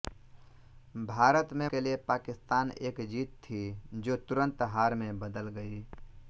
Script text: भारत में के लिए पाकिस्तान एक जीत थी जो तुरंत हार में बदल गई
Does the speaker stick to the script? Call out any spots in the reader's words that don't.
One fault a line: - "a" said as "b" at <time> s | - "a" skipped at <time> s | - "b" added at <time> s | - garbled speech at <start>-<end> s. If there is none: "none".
none